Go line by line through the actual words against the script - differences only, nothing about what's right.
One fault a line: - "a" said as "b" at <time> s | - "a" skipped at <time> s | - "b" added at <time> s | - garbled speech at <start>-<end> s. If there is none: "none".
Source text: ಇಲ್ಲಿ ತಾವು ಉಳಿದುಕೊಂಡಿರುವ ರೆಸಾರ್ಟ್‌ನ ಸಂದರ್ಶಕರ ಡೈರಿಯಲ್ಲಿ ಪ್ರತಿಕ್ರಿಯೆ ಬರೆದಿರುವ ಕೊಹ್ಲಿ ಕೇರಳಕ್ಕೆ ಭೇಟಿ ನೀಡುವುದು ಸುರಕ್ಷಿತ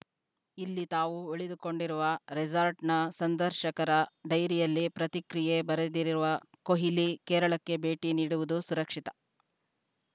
none